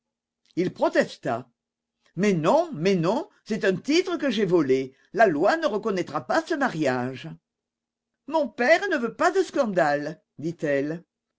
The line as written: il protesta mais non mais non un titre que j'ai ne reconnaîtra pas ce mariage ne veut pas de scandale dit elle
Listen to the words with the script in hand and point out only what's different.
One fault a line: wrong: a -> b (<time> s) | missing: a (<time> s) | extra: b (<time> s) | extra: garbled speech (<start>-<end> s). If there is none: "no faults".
extra: c'est (3.5 s)
extra: volé la loi (4.5 s)
extra: mon père (8.3 s)